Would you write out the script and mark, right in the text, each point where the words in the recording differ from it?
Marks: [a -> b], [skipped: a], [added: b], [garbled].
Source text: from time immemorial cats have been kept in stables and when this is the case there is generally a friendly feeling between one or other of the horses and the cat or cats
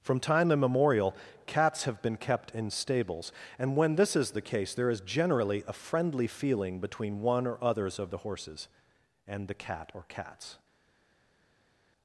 from time immemorial cats have been kept in stables and when this is the case there is generally a friendly feeling between one or [other -> others] of the horses and the cat or cats